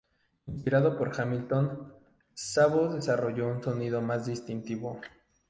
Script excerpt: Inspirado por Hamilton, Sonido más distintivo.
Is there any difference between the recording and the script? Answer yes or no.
yes